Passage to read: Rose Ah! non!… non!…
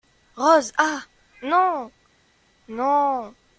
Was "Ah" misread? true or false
false